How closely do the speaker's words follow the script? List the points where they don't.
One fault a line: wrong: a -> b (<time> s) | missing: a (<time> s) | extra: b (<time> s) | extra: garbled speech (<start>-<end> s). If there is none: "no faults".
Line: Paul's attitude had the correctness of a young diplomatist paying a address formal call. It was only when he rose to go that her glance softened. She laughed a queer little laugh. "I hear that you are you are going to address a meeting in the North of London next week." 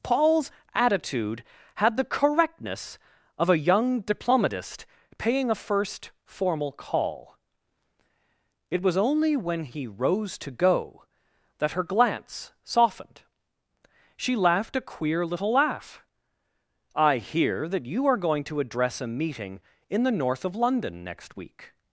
wrong: address -> first (5.5 s)
missing: you are (18.2 s)